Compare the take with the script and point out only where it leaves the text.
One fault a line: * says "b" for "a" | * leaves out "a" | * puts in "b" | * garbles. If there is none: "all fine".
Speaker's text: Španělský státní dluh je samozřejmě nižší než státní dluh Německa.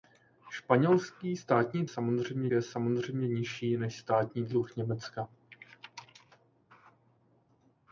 * says "samozřejmě" for "dluh"